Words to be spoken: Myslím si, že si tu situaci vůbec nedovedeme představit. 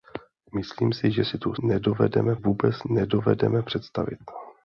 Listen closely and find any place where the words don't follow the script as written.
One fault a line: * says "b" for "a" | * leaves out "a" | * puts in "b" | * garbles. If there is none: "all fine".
* says "nedovedeme" for "situaci"